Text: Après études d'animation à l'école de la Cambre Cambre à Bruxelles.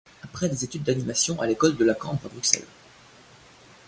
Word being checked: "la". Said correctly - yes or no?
yes